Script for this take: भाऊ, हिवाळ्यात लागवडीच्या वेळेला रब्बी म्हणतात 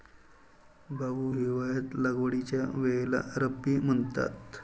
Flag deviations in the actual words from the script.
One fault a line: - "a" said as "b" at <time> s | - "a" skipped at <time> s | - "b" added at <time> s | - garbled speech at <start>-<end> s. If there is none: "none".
none